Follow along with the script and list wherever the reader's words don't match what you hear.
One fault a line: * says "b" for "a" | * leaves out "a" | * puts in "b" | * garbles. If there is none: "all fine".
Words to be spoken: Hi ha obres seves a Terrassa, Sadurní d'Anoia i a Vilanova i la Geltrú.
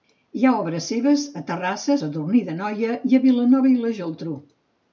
all fine